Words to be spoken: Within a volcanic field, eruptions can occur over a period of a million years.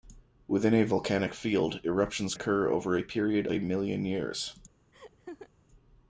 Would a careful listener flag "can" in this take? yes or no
yes